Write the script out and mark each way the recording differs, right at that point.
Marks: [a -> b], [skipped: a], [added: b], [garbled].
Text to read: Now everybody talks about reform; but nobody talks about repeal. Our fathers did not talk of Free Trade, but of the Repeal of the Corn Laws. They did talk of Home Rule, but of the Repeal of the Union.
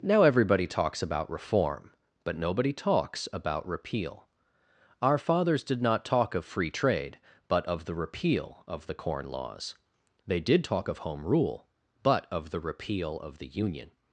Now everybody talks about reform; but nobody talks about repeal. Our fathers did not talk of Free Trade, but of the Repeal of the Corn Laws. They did talk of Home Rule, but of the Repeal of the Union.